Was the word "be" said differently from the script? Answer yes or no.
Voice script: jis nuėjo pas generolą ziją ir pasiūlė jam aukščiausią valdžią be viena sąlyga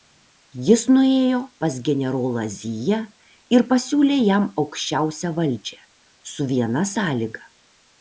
yes